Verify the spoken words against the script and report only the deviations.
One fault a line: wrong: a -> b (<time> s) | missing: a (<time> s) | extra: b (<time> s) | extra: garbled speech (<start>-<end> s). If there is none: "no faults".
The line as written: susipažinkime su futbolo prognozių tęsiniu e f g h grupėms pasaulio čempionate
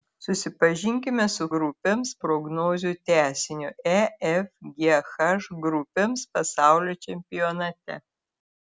wrong: futbolo -> grupėms (1.6 s)